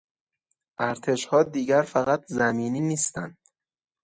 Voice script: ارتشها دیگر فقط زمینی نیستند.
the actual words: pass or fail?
pass